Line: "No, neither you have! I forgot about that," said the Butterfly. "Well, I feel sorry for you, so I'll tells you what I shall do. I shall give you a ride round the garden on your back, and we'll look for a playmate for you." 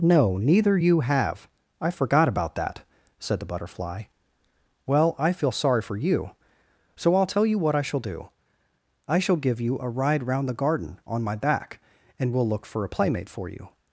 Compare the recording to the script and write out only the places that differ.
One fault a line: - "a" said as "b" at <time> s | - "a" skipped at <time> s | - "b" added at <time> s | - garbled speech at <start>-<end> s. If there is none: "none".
- "tells" said as "tell" at 7.3 s
- "your" said as "my" at 11.2 s